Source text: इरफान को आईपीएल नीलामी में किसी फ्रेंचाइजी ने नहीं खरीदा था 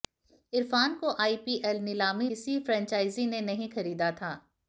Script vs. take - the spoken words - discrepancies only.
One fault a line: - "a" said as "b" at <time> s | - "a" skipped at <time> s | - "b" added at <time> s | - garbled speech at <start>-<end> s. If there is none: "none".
- "में" skipped at 2.3 s